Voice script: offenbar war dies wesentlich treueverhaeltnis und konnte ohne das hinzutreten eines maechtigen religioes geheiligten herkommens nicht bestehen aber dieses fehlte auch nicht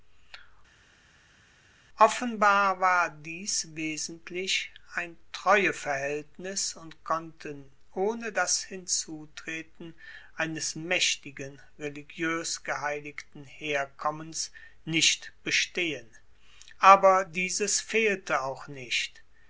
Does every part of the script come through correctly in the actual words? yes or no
no